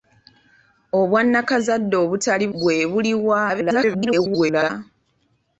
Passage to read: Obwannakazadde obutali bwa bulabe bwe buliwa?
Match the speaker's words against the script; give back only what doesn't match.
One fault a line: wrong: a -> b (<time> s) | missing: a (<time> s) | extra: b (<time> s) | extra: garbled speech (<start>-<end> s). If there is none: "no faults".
missing: bwa bulabe (2.5 s)
extra: garbled speech (3.5-4.7 s)